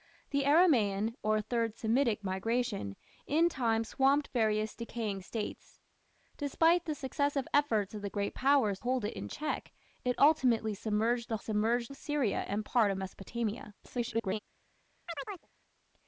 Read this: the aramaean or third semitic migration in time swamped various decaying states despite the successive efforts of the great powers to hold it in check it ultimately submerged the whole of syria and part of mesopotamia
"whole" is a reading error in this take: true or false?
true